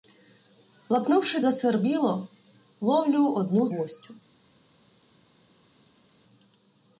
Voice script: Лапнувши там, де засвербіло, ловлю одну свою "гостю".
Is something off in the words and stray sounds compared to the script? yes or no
yes